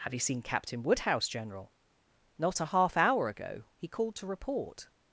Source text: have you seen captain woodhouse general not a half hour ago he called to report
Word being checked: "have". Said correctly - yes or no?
yes